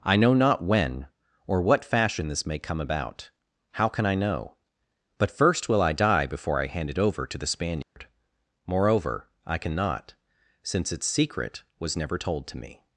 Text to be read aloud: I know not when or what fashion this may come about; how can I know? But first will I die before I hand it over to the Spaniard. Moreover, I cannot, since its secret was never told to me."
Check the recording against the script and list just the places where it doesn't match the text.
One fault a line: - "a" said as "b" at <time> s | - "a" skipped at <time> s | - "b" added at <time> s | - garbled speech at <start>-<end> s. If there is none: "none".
none